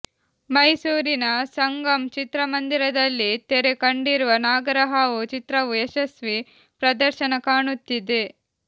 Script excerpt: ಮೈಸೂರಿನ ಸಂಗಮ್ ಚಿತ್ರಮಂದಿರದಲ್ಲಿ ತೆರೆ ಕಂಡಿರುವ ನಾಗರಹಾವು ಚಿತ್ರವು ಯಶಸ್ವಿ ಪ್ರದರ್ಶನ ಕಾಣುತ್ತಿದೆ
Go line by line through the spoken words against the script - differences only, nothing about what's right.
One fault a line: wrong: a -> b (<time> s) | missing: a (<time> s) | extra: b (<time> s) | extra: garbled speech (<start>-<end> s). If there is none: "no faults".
no faults